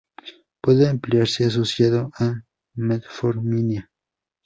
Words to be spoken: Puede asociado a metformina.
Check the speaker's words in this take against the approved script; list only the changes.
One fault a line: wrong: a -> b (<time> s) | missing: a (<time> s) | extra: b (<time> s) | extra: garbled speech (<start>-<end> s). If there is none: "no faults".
extra: emplearse (0.9 s)